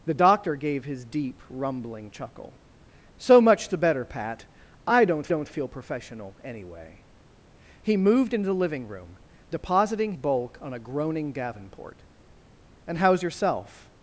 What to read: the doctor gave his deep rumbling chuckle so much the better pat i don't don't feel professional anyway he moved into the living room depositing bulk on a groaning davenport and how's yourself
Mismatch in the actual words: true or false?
false